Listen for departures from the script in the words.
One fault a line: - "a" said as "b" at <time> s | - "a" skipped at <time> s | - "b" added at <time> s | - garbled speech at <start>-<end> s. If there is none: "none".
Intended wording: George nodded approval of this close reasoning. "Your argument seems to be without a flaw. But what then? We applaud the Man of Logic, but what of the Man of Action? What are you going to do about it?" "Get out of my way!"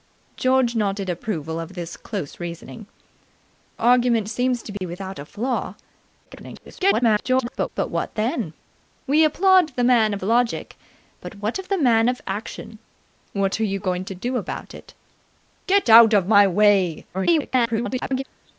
- "Your" skipped at 2.9 s
- garbled speech at 6.2-7.7 s
- garbled speech at 17.1-18.2 s